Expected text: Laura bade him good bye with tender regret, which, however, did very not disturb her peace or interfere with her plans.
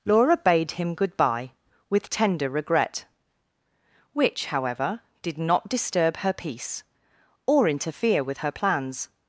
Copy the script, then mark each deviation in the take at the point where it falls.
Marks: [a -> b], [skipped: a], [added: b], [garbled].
Laura bade him good bye with tender regret, which, however, did [skipped: very] not disturb her peace or interfere with her plans.